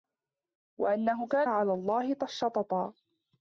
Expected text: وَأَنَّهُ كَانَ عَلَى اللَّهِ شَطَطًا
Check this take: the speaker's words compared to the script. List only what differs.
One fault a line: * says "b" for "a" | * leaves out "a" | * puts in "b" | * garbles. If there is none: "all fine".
all fine